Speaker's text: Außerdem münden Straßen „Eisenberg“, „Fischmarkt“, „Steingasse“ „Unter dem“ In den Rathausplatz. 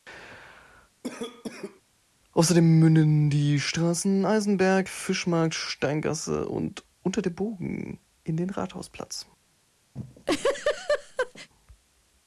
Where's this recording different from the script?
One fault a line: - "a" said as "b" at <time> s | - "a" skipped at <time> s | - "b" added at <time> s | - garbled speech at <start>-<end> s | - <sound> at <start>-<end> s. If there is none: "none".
- cough at 1.0-1.8 s
- "die" added at 3.3 s
- "und" added at 6.5 s
- "Bogen" added at 7.3 s
- laugh at 10.0-11.5 s